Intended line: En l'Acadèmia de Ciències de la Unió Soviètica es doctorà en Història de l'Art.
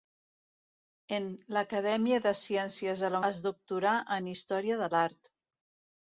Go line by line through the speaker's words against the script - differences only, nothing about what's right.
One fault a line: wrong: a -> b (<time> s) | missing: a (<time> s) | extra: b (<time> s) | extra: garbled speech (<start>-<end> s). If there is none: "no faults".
missing: Unió Soviètica (3.2 s)